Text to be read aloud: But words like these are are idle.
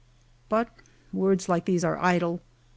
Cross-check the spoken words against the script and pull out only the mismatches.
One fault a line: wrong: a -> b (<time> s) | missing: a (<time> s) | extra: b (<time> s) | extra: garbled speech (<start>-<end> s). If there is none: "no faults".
missing: are (2.0 s)